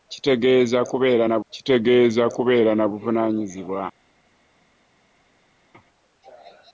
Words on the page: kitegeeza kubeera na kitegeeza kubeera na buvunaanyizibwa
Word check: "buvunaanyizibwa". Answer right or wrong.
right